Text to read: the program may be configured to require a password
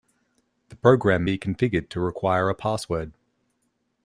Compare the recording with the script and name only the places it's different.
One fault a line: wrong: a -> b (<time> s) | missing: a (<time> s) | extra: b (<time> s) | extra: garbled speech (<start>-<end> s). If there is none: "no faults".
missing: may (1.3 s)